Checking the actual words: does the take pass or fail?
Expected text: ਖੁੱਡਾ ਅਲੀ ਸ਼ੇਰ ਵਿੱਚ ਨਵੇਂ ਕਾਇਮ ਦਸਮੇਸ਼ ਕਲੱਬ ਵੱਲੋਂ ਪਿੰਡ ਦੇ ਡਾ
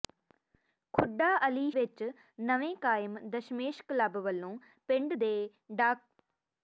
fail